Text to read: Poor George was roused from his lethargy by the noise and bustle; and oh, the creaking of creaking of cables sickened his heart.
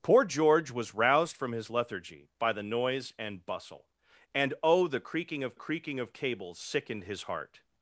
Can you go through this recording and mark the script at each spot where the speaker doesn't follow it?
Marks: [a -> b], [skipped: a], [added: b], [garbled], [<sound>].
Poor George was roused from his lethargy by the noise and bustle; and oh, the creaking of creaking of cables sickened his heart.